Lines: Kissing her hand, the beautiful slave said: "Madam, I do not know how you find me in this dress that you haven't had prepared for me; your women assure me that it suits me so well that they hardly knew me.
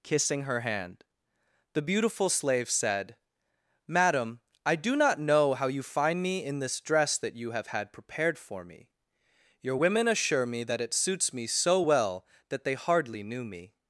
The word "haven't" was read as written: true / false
false